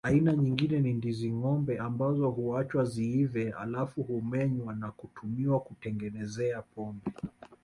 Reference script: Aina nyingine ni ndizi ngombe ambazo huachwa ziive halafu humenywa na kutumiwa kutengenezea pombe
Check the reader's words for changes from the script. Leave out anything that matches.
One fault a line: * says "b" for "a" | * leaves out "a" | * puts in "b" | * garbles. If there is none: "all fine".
all fine